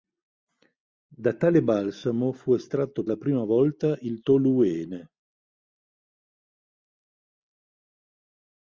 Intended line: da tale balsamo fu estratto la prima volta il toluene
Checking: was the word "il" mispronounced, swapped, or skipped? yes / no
no